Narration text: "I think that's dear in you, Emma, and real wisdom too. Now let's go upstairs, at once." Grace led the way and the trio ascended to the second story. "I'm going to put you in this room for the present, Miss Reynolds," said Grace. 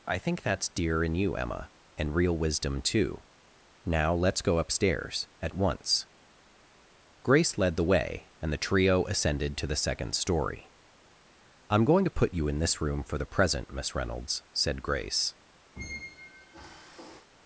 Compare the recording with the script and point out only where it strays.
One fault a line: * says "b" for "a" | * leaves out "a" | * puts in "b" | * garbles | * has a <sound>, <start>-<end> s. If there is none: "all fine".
* has a squeak, 15.8-17.3 s